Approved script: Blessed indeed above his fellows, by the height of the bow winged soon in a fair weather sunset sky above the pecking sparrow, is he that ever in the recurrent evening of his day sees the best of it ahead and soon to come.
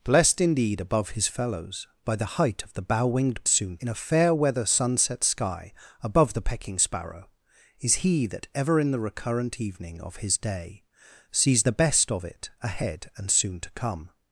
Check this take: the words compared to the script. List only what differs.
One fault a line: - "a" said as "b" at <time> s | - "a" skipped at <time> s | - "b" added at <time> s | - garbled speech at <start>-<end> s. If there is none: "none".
none